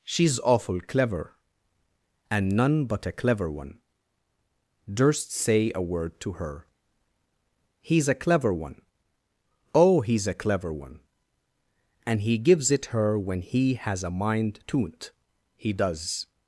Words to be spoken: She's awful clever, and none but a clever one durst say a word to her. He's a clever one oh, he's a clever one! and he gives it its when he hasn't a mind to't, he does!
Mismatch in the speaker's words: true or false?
true